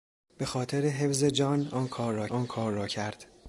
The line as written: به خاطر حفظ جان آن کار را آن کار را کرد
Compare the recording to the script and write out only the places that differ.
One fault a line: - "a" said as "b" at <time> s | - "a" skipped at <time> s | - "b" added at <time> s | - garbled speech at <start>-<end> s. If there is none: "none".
none